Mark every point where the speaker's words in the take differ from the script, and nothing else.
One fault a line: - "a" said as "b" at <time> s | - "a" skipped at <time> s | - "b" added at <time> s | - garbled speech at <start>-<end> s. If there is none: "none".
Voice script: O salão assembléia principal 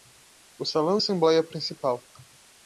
none